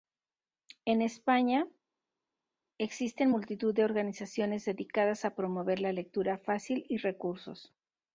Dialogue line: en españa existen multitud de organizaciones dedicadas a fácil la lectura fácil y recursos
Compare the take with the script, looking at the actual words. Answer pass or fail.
fail